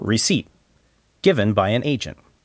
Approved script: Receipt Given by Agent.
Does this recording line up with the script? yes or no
no